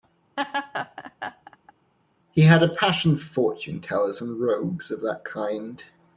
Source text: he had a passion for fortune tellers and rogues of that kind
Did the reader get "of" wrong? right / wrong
right